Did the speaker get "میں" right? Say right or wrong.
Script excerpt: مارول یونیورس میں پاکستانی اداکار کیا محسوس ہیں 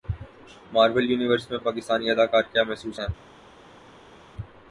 right